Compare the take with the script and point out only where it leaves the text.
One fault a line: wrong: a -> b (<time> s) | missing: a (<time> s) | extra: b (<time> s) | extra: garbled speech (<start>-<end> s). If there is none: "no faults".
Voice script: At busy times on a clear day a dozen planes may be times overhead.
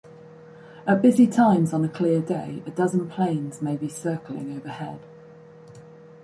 wrong: times -> circling (3.9 s)